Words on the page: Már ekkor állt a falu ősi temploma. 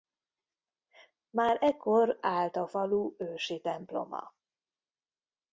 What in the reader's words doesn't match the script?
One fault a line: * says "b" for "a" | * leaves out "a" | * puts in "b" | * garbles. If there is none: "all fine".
all fine